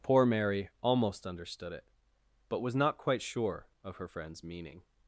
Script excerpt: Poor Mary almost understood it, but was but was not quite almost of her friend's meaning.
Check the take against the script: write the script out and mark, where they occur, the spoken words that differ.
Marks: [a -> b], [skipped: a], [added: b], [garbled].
Poor Mary almost understood it, but was [skipped: but was] not quite [almost -> sure] of her friend's meaning.